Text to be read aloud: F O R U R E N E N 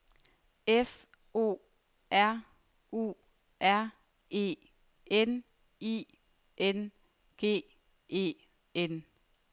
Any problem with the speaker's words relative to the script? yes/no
yes